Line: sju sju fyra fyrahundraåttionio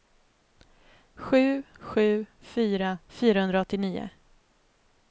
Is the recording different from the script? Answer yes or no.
no